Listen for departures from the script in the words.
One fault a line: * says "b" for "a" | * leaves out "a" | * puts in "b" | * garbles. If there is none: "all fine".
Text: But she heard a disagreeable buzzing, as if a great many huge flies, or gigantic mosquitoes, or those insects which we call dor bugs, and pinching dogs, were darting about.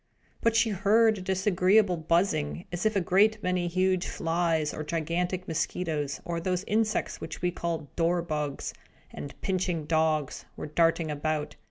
all fine